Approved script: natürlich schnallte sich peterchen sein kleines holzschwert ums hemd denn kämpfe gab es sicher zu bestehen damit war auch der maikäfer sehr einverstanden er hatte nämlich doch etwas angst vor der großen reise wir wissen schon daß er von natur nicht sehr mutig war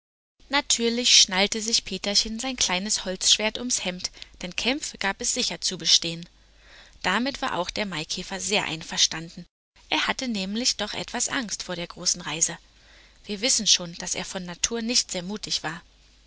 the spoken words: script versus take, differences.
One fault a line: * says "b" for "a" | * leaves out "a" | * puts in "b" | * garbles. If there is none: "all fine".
all fine